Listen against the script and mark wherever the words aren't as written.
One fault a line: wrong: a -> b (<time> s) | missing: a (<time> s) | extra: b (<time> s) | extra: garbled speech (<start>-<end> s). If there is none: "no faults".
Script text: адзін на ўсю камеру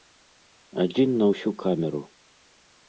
no faults